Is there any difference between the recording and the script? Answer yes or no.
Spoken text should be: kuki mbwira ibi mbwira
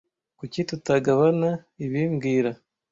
yes